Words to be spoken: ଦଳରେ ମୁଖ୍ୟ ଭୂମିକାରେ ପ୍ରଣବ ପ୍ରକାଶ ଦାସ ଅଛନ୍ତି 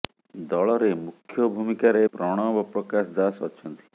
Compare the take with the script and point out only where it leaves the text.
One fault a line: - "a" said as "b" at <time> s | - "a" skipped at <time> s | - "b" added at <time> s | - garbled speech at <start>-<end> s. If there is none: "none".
none